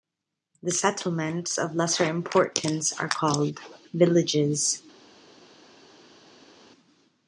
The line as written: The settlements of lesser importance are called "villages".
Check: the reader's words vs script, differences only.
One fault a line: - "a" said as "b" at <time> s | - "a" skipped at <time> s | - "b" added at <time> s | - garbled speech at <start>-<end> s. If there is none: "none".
none